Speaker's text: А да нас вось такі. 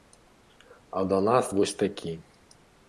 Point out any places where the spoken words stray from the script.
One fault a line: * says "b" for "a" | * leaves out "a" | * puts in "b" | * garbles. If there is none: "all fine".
all fine